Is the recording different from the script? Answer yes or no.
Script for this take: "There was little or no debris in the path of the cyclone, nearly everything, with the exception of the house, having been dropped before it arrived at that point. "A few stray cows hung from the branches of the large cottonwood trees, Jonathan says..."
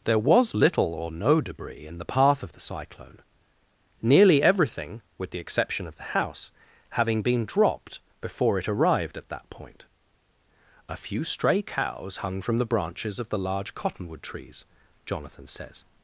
no